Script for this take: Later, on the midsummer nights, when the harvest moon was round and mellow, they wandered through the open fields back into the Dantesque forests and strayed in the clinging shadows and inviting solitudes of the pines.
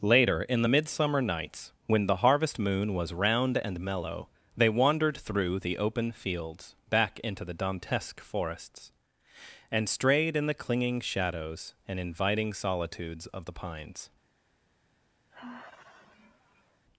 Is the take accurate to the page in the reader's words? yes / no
no